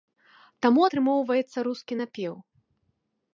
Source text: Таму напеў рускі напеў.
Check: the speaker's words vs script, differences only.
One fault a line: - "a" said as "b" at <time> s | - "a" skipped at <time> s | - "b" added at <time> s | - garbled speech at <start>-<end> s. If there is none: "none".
- "напеў" said as "атрымоўваецца" at 0.8 s